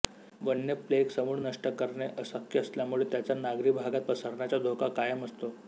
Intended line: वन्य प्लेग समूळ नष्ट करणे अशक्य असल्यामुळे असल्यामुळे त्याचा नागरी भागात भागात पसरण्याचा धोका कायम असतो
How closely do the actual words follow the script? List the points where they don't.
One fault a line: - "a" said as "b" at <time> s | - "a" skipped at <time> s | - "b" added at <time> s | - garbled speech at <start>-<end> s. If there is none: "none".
- "असल्यामुळे" skipped at 3.0 s
- "भागात" skipped at 4.0 s